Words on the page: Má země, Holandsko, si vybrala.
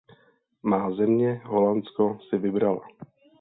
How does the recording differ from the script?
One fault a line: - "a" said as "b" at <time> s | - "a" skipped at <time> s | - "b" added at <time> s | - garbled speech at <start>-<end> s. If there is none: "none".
none